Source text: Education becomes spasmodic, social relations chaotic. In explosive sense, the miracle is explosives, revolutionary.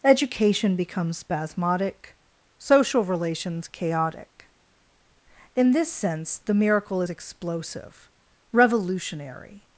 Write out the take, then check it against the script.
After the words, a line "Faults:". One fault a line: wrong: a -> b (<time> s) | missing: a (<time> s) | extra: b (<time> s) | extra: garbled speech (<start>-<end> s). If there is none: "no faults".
Education becomes spasmodic, social relations chaotic. In this sense, the miracle is explosive, revolutionary.
Faults:
wrong: explosive -> this (5.7 s)
wrong: explosives -> explosive (7.1 s)